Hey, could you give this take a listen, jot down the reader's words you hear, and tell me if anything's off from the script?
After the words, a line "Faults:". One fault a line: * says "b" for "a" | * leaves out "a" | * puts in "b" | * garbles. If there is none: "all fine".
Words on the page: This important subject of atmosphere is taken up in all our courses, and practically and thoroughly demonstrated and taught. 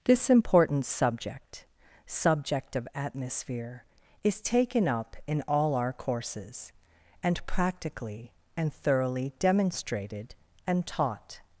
This important subject subject of atmosphere is taken up in all our courses, and practically and thoroughly demonstrated and taught.
Faults:
* puts in "subject"